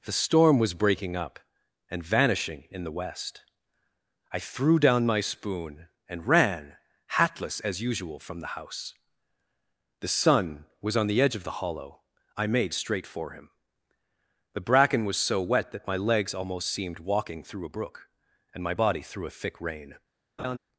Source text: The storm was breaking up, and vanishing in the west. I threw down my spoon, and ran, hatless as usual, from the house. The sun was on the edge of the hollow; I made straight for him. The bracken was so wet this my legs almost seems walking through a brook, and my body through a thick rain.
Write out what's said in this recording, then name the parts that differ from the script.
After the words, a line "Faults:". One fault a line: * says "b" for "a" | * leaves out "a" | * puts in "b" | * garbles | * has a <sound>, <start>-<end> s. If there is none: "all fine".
The storm was breaking up, and vanishing in the west. I threw down my spoon, and ran, hatless as usual, from the house. The sun was on the edge of the hollow; I made straight for him. The bracken was so wet that my legs almost seemed walking through a brook, and my body through a thick rain.
Faults:
* says "that" for "this"
* says "seemed" for "seems"
* has a laugh, 20.4-20.6 s